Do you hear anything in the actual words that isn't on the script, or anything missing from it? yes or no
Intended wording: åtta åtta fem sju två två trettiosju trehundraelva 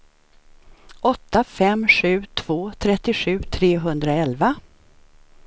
yes